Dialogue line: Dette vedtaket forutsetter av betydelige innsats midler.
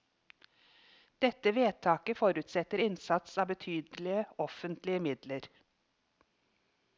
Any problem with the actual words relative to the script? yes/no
yes